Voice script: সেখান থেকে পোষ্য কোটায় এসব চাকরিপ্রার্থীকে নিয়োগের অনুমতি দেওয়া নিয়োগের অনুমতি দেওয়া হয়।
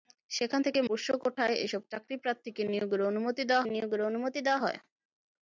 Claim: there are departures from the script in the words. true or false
false